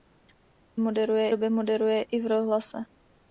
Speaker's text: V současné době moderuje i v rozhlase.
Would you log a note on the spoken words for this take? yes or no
yes